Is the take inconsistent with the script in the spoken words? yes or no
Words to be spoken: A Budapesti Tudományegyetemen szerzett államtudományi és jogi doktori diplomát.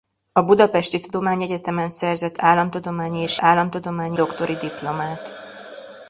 yes